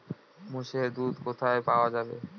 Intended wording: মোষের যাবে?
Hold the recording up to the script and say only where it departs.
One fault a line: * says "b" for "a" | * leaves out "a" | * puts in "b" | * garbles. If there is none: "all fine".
* puts in "দুধ কোথায় পাওয়া"